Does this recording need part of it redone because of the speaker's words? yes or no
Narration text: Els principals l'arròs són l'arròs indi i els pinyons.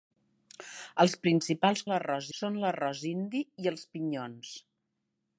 no